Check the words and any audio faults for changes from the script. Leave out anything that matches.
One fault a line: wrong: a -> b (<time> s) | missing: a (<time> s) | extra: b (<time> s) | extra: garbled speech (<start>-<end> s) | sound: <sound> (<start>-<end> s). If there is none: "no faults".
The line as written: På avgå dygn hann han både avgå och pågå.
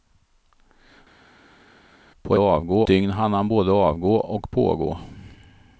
no faults